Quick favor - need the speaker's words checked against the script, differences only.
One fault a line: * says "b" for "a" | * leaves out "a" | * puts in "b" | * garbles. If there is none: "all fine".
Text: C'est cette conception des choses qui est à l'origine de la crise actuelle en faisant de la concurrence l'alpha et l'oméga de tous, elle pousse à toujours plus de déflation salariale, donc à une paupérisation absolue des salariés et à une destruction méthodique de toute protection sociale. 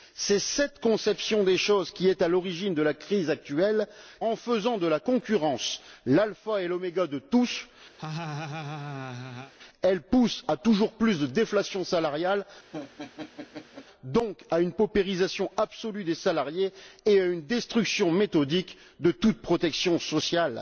all fine